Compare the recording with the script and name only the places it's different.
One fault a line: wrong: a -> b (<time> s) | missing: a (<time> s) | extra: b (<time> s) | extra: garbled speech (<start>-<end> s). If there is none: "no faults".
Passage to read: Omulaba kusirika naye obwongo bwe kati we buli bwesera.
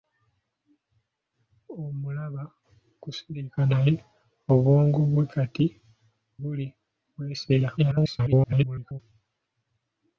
missing: we (5.7 s)
extra: garbled speech (7.8-9.0 s)